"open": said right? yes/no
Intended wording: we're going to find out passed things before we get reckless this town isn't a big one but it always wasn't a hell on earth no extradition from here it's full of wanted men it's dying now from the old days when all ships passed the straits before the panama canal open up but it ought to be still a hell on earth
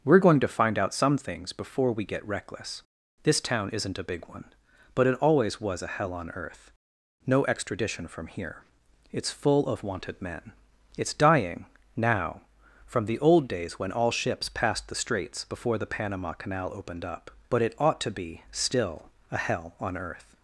no